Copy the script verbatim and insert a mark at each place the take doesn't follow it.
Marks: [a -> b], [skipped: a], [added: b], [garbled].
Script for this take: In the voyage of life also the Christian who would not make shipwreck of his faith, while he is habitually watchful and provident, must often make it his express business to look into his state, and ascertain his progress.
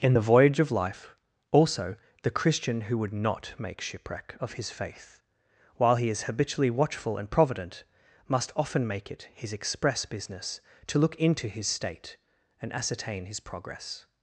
In the voyage of life also the Christian who would not make shipwreck of his faith, while he is habitually watchful and provident, must often make it his express business to look into his state, and ascertain his progress.